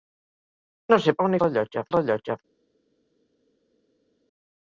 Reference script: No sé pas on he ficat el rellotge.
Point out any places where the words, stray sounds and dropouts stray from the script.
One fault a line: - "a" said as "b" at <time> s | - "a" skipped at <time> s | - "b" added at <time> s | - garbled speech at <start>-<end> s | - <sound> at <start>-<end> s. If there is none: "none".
- "pas" skipped at 1.1 s
- "ficat" said as "rellotge" at 1.4 s